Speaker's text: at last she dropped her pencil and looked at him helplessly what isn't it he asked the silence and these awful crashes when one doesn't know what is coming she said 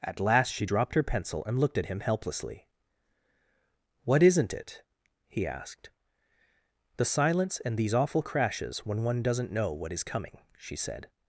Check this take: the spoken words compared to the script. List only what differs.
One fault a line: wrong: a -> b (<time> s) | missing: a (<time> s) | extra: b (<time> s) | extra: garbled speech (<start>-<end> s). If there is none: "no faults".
no faults